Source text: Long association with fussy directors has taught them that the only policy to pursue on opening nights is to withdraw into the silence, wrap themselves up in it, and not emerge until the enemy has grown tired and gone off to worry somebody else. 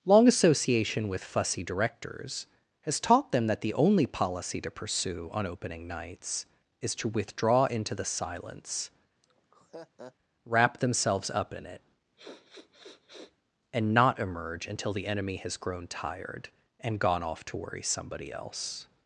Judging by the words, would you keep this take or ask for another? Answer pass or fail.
pass